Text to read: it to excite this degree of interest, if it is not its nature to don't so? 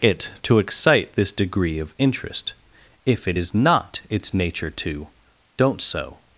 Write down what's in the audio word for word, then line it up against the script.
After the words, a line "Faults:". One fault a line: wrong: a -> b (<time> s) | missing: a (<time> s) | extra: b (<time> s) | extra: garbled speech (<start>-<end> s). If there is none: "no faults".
it to excite this degree of interest, if it is not its nature to don't so?
Faults:
no faults